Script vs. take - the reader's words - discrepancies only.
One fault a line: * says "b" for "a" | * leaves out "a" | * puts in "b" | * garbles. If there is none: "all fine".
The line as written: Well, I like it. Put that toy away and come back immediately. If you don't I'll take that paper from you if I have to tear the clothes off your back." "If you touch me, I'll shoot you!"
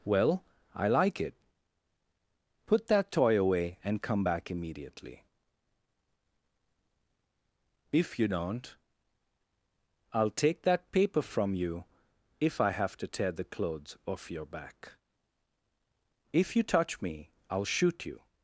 all fine